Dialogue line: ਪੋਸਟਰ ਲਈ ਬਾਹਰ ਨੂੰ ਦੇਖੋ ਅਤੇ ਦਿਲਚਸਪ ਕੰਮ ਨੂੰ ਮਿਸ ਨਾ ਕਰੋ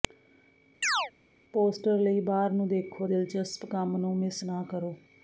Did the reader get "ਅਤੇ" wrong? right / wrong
wrong